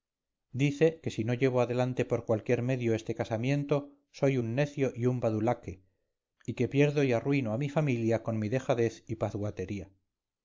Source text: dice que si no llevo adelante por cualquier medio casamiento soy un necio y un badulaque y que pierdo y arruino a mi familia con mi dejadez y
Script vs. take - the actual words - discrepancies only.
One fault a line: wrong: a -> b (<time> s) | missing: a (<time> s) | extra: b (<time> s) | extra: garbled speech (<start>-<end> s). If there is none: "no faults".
extra: este (3.0 s)